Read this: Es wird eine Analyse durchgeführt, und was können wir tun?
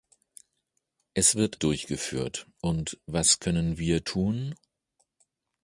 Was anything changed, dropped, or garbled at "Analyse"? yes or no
yes